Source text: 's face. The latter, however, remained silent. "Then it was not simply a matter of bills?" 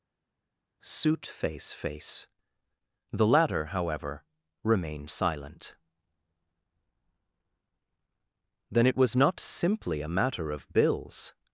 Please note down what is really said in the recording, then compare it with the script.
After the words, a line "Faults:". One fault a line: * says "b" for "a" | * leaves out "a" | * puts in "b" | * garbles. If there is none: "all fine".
'suit face face. The latter, however, remained silent. "Then it was not simply a matter of bills?"
Faults:
* says "suit face" for "s"